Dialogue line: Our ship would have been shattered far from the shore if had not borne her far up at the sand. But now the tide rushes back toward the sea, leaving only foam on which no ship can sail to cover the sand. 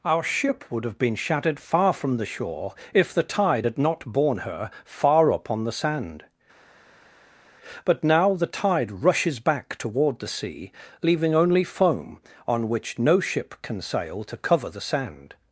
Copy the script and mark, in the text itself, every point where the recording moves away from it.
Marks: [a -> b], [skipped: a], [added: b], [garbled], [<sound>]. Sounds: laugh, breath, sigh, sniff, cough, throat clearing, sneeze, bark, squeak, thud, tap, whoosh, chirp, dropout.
Our ship would have been shattered far from the shore if [added: the tide] had not borne her far up [at -> on] the sand. But now the tide rushes back toward the sea, leaving only foam on which no ship can sail to cover the sand.